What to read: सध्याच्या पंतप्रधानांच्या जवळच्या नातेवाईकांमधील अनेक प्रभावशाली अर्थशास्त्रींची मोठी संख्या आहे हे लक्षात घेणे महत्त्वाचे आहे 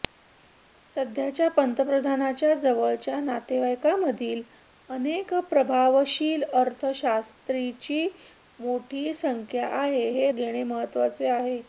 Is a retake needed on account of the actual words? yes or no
yes